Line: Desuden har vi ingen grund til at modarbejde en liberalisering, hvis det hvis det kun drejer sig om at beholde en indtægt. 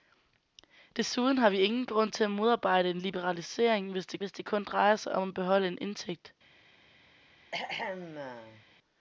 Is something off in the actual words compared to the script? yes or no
no